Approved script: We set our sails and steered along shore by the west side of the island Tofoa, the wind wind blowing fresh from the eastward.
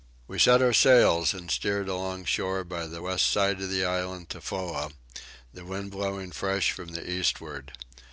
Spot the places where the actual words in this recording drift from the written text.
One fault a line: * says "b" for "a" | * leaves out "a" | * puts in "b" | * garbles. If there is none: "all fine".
* leaves out "wind"